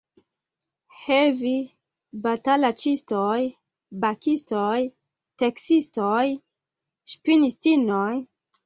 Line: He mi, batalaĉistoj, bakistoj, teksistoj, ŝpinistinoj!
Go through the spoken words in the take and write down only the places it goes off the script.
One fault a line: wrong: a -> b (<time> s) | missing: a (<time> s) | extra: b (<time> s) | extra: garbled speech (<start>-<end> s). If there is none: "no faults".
wrong: mi -> vi (1.4 s)